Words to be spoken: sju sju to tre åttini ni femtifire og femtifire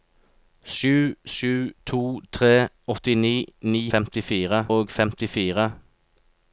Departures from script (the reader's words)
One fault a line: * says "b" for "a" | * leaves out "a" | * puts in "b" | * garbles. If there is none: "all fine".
all fine